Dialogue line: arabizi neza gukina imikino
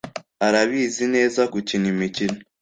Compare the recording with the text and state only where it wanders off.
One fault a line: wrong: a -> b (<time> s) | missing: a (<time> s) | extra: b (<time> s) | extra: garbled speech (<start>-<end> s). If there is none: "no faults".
no faults